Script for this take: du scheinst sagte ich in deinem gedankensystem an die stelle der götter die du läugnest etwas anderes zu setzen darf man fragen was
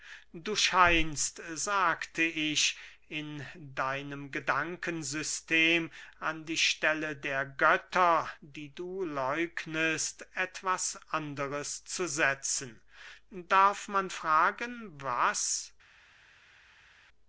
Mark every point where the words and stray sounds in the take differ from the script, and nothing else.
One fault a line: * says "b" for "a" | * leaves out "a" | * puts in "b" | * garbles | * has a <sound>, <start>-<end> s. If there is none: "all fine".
all fine